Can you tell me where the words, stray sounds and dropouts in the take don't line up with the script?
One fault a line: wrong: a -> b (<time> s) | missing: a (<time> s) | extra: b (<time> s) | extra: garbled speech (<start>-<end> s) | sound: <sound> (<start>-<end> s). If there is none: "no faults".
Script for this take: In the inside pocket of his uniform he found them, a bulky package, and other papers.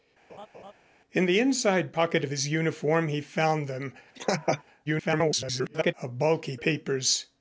sound: laugh (0.3-0.7 s)
sound: laugh (4.2-4.6 s)
extra: garbled speech (4.9-5.9 s)
missing: package and other (6.6 s)